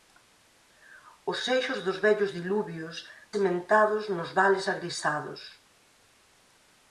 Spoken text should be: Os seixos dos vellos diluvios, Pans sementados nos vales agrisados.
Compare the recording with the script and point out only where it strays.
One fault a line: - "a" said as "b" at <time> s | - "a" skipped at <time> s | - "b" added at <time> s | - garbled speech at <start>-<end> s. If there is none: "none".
- "Pans" skipped at 3.0 s